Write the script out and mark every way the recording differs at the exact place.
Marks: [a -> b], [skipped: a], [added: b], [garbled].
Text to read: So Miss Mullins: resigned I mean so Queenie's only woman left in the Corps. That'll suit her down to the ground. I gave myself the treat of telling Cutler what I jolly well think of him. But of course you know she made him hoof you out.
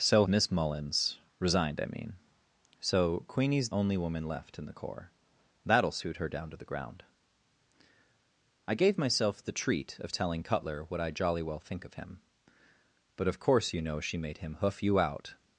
So Miss Mullins: resigned I mean so Queenie's only woman left in the Corps. That'll suit her down to the ground. I gave myself the treat of telling Cutler what I jolly well think of him. But of course you know she made him hoof you out.